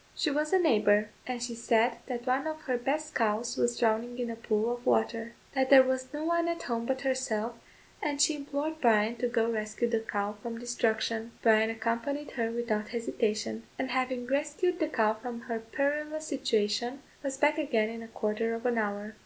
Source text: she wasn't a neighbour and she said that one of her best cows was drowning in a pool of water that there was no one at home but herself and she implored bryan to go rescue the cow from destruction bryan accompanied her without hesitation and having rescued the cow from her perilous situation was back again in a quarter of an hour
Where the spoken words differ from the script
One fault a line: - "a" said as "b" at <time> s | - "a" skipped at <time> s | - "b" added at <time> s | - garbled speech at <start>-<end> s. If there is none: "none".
- "wasn't" said as "was" at 0.3 s